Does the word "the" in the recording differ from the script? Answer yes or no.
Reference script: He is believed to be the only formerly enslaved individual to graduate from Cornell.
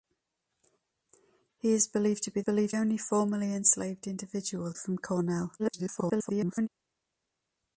yes